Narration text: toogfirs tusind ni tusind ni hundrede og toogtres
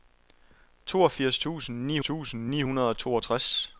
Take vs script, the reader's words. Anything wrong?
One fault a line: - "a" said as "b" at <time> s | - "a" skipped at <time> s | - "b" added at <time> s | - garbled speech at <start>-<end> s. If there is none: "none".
none